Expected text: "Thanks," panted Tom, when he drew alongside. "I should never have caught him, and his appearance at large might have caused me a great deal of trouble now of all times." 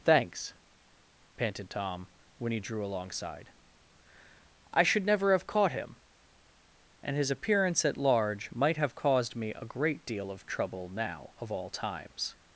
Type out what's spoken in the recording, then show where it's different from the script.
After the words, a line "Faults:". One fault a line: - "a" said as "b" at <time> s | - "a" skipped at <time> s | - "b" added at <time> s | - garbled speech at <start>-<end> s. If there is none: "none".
"Thanks," panted Tom, when he drew alongside. "I should never have caught him, and his appearance at large might have caused me a great deal of trouble now of all times."
Faults:
none